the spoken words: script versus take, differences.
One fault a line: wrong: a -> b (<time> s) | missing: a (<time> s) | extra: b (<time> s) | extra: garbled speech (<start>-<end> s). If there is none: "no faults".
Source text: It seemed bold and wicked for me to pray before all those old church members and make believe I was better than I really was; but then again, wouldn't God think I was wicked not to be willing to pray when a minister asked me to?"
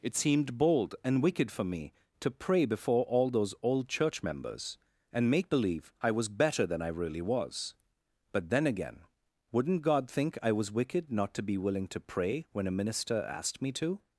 no faults